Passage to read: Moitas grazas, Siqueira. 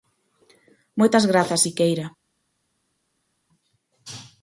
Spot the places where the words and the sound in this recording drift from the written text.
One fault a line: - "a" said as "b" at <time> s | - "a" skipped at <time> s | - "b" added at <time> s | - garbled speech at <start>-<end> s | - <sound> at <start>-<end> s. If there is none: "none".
none